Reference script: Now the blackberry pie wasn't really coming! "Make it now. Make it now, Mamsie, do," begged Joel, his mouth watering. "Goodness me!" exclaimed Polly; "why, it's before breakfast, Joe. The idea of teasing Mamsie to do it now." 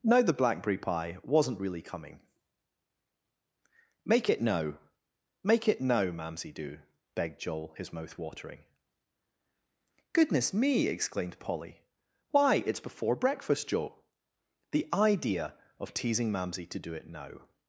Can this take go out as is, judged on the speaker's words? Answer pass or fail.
pass